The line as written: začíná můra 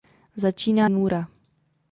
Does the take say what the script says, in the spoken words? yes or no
yes